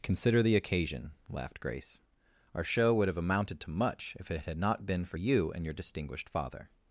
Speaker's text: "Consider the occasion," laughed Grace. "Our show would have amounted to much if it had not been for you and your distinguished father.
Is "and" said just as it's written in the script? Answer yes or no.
yes